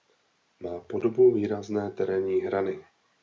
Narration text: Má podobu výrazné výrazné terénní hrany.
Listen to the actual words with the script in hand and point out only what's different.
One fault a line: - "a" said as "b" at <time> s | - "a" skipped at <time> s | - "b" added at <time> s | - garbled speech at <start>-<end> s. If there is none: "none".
- "výrazné" skipped at 1.9 s